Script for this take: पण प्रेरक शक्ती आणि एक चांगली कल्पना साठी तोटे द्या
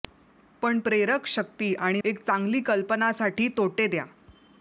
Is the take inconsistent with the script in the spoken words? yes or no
no